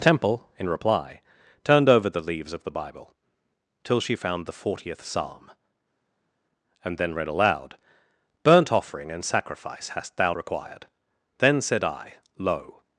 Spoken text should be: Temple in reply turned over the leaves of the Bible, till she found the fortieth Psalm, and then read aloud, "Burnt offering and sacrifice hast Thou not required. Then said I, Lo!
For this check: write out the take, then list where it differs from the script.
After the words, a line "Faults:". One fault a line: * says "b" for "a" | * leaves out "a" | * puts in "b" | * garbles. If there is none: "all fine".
Temple in reply turned over the leaves of the Bible, till she found the fortieth Psalm, and then read aloud, "Burnt offering and sacrifice hast Thou required. Then said I, Lo!
Faults:
* leaves out "not"